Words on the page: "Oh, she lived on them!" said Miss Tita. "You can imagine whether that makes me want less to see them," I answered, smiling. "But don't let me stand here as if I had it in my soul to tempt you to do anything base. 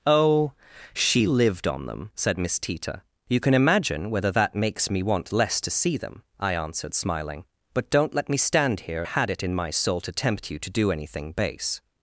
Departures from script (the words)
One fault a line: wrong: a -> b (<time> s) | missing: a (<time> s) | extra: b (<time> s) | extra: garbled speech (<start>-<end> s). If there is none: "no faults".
missing: as if I (9.0 s)